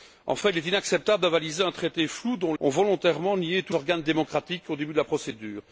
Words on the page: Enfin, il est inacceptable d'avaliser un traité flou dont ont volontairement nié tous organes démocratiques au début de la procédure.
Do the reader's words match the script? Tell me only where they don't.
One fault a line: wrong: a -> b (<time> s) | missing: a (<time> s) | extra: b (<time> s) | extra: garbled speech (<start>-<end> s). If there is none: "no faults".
no faults